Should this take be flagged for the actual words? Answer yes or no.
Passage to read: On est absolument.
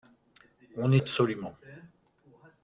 no